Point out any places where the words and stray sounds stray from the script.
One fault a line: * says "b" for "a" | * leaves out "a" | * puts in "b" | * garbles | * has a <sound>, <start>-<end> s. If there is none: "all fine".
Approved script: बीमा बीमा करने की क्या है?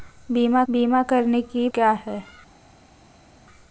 all fine